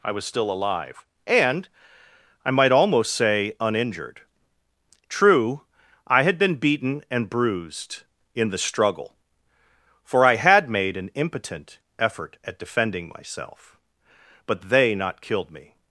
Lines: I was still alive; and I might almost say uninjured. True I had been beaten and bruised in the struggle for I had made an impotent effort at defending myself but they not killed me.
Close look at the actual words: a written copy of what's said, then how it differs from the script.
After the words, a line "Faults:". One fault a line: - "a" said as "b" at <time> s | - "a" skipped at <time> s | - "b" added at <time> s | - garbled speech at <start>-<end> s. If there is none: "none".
I was still alive; and I might almost say uninjured. True I had been beaten and bruised in the struggle for I had made an impotent effort at defending myself but they not killed me.
Faults:
none